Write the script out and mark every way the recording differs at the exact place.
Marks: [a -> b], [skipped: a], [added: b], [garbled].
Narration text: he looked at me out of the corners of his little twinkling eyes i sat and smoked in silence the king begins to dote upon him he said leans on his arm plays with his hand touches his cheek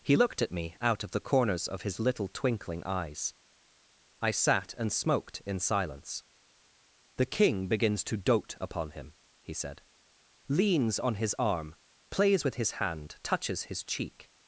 he looked at me out of the corners of his little twinkling eyes i sat and smoked in silence the king begins to dote upon him he said leans on his arm plays with his hand touches his cheek